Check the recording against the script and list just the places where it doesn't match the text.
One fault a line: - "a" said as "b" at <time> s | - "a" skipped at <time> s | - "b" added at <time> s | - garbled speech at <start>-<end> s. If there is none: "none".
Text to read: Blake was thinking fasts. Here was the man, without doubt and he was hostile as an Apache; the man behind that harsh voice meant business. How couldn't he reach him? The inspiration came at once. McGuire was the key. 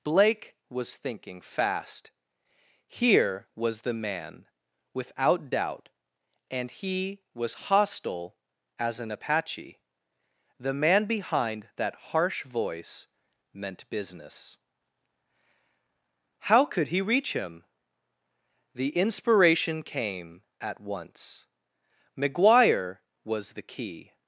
- "fasts" said as "fast" at 1.4 s
- "couldn't" said as "could" at 16.6 s